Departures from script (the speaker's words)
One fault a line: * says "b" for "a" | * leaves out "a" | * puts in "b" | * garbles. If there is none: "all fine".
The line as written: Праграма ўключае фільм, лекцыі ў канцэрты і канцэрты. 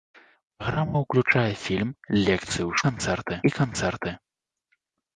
all fine